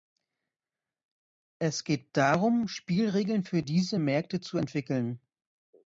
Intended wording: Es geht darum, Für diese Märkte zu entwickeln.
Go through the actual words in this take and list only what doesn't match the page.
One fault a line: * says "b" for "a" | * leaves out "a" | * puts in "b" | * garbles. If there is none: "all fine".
* puts in "Spielregeln"